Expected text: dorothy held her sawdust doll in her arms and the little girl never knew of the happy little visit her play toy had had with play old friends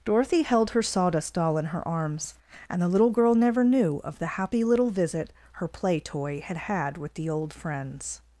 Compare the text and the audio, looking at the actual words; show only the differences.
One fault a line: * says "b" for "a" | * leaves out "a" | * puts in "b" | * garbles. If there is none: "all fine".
* says "the" for "play"